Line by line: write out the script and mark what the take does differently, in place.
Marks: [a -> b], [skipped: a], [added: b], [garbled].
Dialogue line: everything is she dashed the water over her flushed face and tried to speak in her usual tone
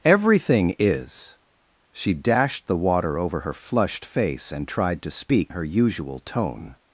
everything is she dashed the water over her flushed face and tried to speak [skipped: in] her usual tone